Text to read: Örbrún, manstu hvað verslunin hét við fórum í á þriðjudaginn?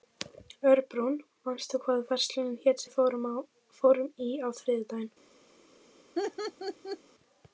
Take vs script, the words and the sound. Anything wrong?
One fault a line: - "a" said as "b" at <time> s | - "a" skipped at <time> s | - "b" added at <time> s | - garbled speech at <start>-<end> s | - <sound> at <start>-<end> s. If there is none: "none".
- laugh at 6.2-7.0 s